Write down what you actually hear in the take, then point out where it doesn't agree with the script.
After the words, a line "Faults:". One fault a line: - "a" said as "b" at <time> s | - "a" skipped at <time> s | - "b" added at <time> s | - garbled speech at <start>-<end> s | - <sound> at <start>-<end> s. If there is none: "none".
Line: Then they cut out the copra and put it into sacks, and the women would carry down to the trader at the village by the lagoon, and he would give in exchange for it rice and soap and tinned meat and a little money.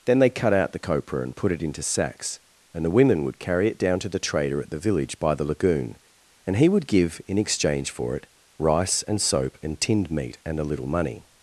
Then they cut out the copra and put it into sacks, and the women would carry it down to the trader at the village by the lagoon, and he would give in exchange for it rice and soap and tinned meat and a little money.
Faults:
- "it" added at 3.7 s